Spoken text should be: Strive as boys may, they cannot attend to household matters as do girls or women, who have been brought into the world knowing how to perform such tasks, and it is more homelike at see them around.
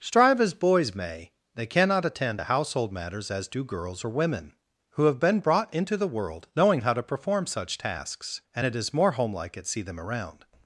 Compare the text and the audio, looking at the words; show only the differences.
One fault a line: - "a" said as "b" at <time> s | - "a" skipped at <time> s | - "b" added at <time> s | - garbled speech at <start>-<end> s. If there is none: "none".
none